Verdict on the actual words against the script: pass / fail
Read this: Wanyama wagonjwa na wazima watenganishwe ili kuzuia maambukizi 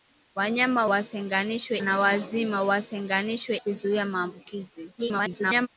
fail